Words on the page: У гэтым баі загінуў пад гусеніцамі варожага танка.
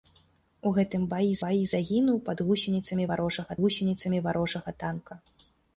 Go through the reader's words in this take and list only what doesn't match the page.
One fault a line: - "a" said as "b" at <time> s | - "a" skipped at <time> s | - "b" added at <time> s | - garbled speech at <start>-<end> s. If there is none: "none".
- "баі" added at 1.4 s
- "гусеніцамі варожага" added at 3.7 s